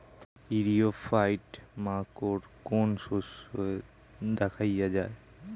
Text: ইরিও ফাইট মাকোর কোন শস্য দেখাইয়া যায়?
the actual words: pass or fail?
pass